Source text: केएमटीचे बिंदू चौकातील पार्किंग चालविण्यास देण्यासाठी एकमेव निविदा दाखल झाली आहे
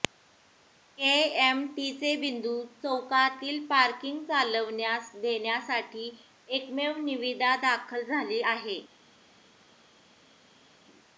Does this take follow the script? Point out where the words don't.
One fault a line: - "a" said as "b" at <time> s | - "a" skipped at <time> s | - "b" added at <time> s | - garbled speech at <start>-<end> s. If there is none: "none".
none